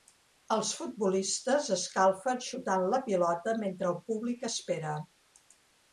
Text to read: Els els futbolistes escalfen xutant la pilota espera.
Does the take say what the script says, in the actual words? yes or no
no